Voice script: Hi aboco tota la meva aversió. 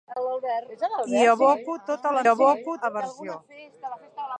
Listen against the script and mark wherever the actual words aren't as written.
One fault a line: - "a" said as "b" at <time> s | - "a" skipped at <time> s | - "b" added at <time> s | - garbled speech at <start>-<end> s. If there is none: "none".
- "meva" said as "aboco" at 2.3 s